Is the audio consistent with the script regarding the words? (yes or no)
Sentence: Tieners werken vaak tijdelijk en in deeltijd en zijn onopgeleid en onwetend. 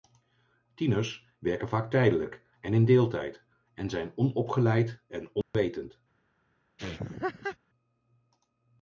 yes